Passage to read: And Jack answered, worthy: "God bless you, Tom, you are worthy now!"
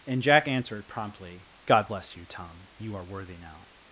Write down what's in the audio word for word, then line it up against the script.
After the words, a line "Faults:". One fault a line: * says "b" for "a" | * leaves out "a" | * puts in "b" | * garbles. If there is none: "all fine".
And Jack answered, promptly: "God bless you, Tom, you are worthy now!"
Faults:
* says "promptly" for "worthy"